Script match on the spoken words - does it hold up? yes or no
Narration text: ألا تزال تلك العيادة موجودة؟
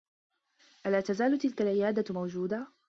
yes